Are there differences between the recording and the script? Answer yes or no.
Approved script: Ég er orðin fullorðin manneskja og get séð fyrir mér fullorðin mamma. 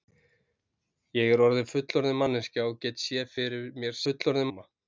no